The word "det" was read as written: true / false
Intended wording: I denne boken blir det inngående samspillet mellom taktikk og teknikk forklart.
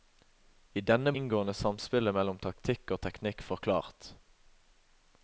false